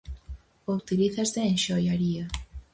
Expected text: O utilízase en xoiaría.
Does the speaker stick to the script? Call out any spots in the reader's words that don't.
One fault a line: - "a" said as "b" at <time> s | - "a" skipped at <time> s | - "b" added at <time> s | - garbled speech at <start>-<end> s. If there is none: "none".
none